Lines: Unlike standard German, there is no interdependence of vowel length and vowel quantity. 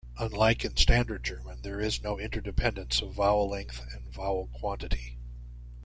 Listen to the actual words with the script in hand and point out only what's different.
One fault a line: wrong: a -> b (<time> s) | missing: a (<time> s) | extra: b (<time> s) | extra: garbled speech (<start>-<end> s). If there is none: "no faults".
extra: in (0.7 s)